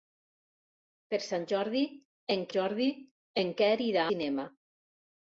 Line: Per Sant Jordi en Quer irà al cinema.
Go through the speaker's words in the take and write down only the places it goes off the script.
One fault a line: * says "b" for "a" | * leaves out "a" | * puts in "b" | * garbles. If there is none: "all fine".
* puts in "Jordi en"
* leaves out "al"